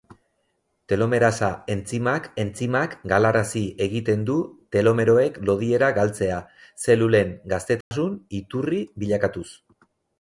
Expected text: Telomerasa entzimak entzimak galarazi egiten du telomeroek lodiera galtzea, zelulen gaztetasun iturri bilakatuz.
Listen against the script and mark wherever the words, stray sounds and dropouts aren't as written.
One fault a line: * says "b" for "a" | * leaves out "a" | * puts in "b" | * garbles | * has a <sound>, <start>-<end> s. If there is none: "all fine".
* has a dropout, 7.8-7.9 s